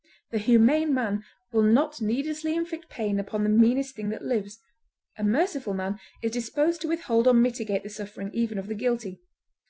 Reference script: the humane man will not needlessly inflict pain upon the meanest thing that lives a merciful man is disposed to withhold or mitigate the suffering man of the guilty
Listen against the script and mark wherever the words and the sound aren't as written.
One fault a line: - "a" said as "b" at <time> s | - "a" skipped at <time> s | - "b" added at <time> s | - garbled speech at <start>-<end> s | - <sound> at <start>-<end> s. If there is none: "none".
- "man" said as "even" at 8.3 s